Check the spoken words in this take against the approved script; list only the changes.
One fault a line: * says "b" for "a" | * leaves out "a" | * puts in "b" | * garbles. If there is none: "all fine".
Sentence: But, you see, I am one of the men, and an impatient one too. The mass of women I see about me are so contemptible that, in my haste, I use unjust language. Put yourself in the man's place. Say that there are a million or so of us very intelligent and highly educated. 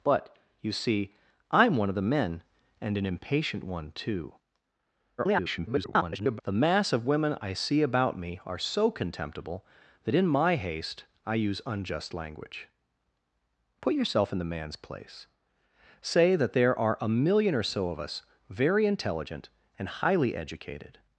* garbles